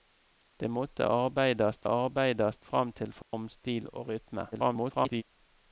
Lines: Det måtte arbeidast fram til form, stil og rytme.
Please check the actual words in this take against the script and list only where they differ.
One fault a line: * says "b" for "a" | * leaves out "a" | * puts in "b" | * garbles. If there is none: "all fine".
* puts in "arbeidast"
* garbles